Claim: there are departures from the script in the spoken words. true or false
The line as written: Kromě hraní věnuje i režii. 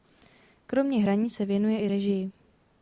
true